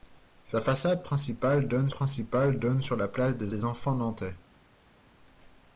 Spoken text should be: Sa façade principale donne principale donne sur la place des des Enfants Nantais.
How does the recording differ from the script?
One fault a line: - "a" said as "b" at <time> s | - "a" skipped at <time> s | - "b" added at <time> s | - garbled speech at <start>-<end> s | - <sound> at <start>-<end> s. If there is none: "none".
none